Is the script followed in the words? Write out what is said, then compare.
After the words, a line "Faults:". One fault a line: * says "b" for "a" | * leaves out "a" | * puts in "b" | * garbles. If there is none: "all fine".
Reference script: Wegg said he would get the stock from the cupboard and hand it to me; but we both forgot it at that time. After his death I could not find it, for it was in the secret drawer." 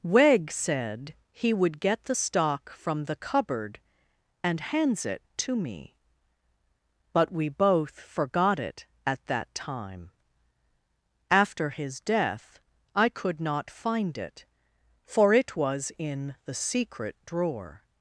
Wegg said he would get the stock from the cupboard and hands it to me; but we both forgot it at that time. After his death I could not find it, for it was in the secret drawer."
Faults:
* says "hands" for "hand"